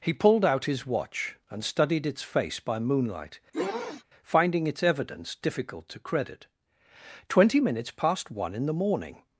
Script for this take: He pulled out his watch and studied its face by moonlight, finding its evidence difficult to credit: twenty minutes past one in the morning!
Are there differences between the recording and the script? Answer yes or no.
no